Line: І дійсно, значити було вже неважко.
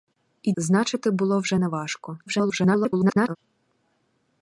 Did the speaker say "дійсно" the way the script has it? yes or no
no